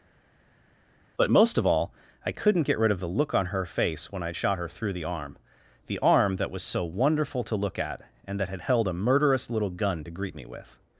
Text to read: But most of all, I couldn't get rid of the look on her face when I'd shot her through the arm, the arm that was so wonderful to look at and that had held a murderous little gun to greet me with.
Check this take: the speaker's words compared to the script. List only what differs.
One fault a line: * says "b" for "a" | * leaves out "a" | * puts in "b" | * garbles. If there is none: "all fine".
all fine